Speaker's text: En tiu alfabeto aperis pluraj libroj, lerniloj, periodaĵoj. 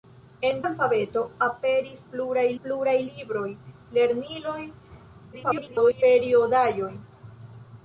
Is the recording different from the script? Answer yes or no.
yes